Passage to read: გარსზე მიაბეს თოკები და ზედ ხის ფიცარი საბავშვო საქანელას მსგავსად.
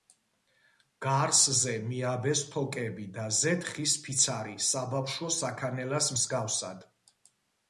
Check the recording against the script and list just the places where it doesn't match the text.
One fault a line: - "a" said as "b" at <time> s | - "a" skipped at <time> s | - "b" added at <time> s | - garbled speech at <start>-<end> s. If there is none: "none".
none